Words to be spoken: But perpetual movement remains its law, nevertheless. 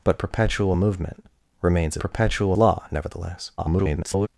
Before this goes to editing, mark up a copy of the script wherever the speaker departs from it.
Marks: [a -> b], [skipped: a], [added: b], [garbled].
But perpetual movement remains [its -> perpetual] law, nevertheless. [garbled]